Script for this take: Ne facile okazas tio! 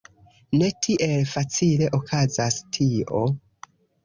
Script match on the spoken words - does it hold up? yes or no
no